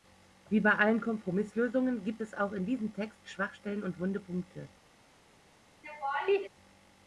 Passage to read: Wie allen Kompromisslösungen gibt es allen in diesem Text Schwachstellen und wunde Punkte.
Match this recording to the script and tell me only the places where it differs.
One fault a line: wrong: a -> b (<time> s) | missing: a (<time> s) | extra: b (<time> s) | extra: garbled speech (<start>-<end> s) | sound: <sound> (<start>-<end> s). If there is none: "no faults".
extra: bei (0.6 s)
wrong: allen -> auch (2.3 s)
sound: laugh (5.8-6.5 s)